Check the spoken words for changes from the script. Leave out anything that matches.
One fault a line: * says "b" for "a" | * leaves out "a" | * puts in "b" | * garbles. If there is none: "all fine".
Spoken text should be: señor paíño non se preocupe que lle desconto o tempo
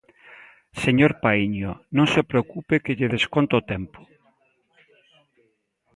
all fine